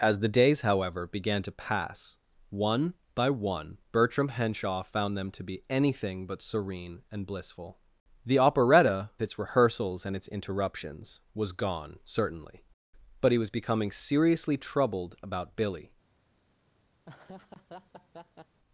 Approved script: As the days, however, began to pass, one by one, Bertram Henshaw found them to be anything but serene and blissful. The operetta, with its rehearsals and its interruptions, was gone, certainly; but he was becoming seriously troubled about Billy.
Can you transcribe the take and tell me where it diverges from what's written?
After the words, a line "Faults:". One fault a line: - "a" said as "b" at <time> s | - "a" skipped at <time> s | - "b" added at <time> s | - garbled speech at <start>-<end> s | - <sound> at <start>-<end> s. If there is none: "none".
As the days, however, began to pass, one by one, Bertram Henshaw found them to be anything but serene and blissful. The operetta, its rehearsals and its interruptions, was gone, certainly; but he was becoming seriously troubled about Billy.
Faults:
- "with" skipped at 9.1 s
- laugh at 17.0-18.6 s